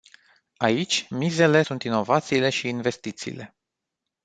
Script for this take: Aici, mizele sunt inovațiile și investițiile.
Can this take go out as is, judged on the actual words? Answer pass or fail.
pass